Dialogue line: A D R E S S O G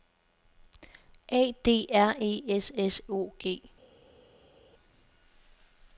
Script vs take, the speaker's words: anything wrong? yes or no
no